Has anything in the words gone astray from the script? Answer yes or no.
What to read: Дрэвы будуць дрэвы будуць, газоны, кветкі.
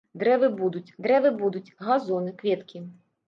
no